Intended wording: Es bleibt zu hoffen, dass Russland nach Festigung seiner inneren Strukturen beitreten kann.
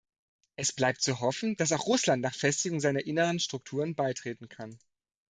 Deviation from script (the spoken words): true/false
true